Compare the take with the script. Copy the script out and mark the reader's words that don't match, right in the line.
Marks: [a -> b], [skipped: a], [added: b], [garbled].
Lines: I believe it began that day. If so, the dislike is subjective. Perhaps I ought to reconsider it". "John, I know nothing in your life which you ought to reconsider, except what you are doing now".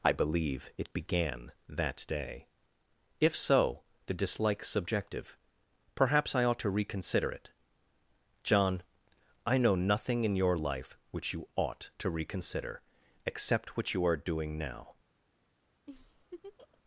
I believe it began that day. If so, the dislike [skipped: is] subjective. Perhaps I ought to reconsider it". "John, I know nothing in your life which you ought to reconsider, except what you are doing now".